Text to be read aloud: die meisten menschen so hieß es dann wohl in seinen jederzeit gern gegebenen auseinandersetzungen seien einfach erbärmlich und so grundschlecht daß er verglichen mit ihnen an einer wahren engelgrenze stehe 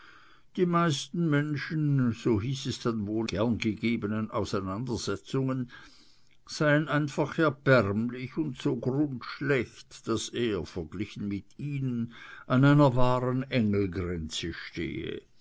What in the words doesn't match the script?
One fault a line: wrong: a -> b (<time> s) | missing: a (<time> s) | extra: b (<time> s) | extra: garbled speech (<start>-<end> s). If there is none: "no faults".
missing: in seinen jederzeit (3.3 s)